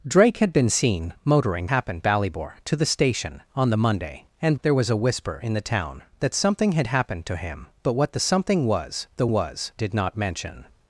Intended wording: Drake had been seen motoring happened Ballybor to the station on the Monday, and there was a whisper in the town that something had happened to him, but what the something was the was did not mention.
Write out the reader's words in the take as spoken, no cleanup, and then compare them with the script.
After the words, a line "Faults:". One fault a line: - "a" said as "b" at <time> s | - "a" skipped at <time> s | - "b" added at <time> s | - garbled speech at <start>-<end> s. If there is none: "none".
Drake had been seen motoring happened Ballybor to the station on the Monday, and there was a whisper in the town that something had happened to him, but what the something was the was did not mention.
Faults:
none